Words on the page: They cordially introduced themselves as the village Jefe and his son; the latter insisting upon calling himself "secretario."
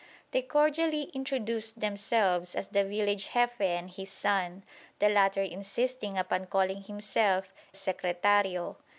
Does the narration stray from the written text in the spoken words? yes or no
no